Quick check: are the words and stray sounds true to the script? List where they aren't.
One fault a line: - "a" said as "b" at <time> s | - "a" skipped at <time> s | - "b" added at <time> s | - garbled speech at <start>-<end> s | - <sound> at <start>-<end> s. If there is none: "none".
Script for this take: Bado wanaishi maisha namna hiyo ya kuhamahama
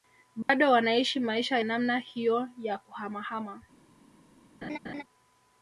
- dropout at 0.4-0.5 s
- laugh at 4.6-5.0 s